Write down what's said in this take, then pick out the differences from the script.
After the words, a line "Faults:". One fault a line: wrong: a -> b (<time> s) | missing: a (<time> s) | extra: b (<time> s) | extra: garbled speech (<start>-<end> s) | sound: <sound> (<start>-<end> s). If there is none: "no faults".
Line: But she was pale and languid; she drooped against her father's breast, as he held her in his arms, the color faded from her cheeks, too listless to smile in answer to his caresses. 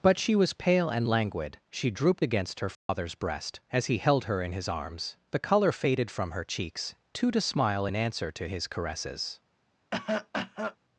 But she was pale and languid; she drooped against her father's breast, as he held her in his arms, the color faded from her cheeks, too to smile in answer to his caresses.
Faults:
sound: dropout (2.7-2.9 s)
missing: listless (7.3 s)
sound: cough (9.9-10.8 s)